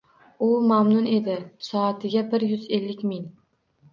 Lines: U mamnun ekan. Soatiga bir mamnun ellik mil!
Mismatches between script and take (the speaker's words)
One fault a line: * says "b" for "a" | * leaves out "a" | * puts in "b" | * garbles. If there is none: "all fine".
* says "edi" for "ekan"
* says "yuz" for "mamnun"